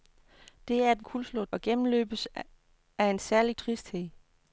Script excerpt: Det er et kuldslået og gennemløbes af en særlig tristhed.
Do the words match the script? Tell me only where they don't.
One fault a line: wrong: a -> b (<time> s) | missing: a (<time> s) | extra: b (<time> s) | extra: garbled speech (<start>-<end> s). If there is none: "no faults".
no faults